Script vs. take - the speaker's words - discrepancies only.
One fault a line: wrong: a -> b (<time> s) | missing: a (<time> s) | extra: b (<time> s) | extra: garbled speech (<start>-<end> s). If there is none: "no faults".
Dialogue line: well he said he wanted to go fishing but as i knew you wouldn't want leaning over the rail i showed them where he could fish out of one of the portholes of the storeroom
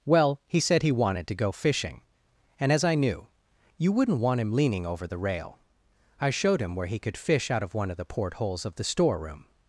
wrong: but -> and (2.6 s)
extra: him (4.4 s)
wrong: them -> him (6.6 s)